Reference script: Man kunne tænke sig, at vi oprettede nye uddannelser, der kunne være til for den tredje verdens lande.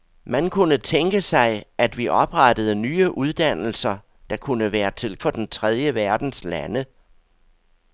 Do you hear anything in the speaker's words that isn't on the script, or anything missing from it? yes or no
no